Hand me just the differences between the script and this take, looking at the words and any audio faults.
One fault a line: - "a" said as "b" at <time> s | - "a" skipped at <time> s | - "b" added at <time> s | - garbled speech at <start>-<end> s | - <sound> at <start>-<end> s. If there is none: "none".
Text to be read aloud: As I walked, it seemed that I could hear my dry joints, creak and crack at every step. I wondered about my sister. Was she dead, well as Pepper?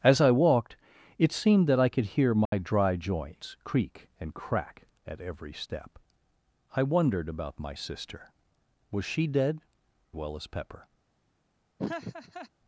- dropout at 2.5-2.5 s
- laugh at 11.8-12.5 s